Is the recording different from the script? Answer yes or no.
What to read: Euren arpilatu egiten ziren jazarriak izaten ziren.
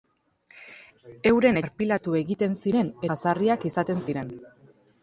no